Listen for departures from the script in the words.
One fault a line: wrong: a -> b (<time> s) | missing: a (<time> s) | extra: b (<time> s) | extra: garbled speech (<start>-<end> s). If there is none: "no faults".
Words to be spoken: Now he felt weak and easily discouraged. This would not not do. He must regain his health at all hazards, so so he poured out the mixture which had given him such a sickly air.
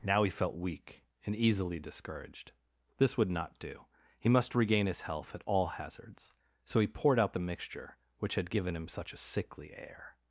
missing: not (3.6 s)
missing: so (6.8 s)